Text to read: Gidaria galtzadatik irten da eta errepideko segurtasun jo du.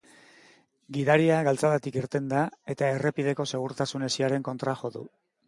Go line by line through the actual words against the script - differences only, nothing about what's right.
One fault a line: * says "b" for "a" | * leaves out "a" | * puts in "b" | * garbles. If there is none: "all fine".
* puts in "hesiaren kontra"